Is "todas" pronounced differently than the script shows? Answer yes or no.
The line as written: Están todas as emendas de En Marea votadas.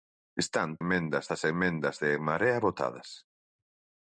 yes